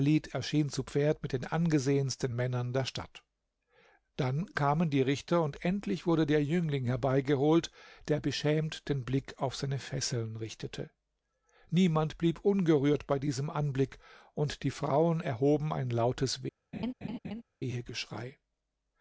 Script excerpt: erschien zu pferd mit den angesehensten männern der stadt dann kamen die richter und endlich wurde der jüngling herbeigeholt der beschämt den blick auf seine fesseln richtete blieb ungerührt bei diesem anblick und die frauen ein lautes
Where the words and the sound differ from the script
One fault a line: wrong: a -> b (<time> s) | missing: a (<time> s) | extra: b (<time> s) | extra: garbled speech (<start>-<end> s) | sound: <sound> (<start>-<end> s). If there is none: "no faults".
extra: niemand (11.7 s)
extra: erhoben (15.2 s)
sound: laugh (16.7-17.4 s)